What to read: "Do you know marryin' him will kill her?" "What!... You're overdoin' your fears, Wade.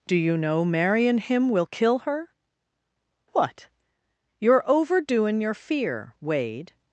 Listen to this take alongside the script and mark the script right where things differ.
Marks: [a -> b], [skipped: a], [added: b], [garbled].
"Do you know marryin' him will kill her?" "What!... You're overdoin' your [fears, -> fear] Wade.